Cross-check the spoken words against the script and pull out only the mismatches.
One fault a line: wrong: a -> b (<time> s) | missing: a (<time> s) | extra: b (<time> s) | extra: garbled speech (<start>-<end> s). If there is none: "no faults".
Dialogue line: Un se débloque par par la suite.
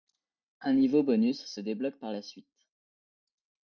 extra: niveau bonus (0.7 s)
missing: par (2.1 s)